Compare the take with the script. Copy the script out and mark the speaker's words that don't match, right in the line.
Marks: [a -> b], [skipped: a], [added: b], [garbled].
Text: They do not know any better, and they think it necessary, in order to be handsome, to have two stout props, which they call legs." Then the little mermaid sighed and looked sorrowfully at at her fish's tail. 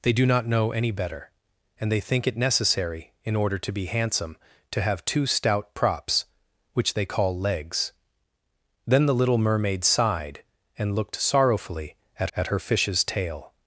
They do not know any better, and they think it necessary, in order to be handsome, to have two stout props, which they call legs." Then the little mermaid sighed and looked sorrowfully at at her fish's tail.